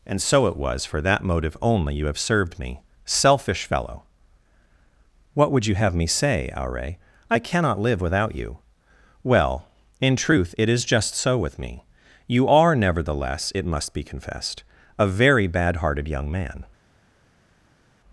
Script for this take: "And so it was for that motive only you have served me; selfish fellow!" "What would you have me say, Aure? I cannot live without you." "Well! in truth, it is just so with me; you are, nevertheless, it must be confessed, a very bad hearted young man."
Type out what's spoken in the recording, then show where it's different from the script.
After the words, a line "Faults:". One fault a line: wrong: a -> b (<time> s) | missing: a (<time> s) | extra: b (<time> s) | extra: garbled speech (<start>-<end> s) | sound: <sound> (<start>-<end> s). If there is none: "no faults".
"And so it was for that motive only you have served me; selfish fellow!" "What would you have me say, Aure? I cannot live without you." "Well! in truth, it is just so with me; you are, nevertheless, it must be confessed, a very bad hearted young man."
Faults:
no faults